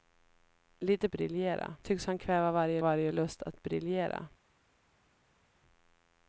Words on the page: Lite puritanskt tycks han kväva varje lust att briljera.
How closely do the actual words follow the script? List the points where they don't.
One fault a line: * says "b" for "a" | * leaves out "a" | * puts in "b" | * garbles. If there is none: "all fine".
* says "briljera" for "puritanskt"
* puts in "varje"